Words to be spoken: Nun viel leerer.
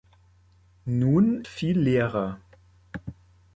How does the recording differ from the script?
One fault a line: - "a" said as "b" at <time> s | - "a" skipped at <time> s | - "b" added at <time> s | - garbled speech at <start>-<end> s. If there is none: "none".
none